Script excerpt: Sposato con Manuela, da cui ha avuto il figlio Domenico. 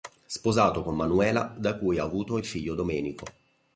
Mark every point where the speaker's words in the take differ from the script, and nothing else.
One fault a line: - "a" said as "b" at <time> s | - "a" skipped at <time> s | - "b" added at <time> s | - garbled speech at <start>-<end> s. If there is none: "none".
none